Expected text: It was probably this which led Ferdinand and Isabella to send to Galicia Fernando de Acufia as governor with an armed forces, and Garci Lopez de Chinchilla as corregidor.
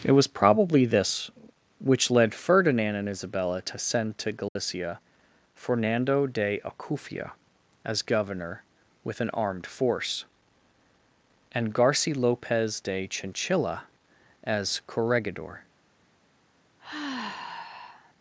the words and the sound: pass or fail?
fail